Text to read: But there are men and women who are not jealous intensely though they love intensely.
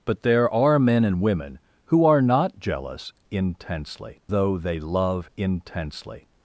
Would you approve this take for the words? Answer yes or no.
yes